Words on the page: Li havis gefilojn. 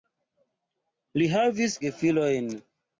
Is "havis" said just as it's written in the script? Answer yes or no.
yes